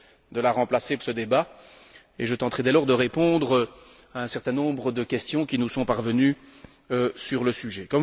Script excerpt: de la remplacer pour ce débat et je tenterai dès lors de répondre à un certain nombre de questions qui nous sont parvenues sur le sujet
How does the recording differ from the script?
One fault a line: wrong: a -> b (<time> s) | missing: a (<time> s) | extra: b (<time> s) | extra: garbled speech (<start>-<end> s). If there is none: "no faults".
missing: pour (1.0 s)